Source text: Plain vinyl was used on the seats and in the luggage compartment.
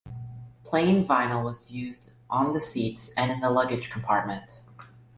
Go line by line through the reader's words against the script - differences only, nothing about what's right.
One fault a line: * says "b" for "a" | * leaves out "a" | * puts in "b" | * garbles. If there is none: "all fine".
all fine